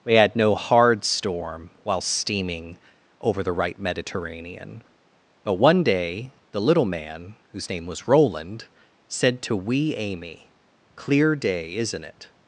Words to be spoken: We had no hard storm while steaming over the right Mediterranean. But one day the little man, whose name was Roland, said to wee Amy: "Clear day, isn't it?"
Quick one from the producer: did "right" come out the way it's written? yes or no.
yes